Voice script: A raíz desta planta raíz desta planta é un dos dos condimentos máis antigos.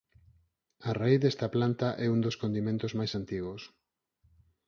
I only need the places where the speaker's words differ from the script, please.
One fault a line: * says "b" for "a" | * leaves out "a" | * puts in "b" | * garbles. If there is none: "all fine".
* leaves out "raíz desta planta"
* leaves out "dos"